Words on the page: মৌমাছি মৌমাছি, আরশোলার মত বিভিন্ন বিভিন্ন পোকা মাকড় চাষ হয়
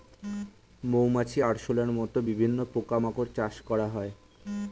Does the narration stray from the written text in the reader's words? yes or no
yes